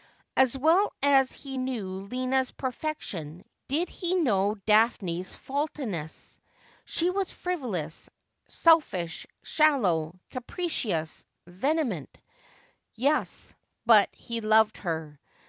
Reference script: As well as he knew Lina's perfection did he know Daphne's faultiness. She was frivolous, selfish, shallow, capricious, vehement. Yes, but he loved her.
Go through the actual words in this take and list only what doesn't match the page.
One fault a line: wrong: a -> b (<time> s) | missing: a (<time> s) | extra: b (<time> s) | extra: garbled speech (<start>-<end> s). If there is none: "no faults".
no faults